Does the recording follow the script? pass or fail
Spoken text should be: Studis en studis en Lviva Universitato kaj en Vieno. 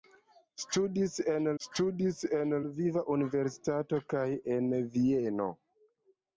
pass